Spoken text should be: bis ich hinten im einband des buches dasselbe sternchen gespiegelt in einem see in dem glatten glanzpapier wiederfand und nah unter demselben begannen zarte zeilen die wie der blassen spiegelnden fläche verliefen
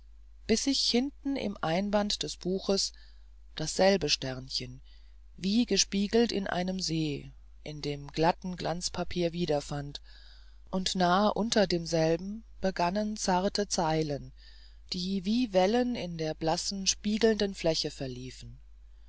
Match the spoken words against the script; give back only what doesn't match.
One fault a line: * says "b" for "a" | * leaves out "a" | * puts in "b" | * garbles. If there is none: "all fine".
* puts in "wie"
* puts in "wellen in"